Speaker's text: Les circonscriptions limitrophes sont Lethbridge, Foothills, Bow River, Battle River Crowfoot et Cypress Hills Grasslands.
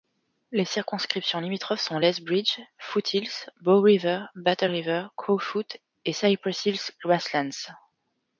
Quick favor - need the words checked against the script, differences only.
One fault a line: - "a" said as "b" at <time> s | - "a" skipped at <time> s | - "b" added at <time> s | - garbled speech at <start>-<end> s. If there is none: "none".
none